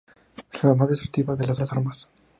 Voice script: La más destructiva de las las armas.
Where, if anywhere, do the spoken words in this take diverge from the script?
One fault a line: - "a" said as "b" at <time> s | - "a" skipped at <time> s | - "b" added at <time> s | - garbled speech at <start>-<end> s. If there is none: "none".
none